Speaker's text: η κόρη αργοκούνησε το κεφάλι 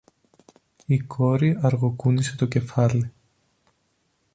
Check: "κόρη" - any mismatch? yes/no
no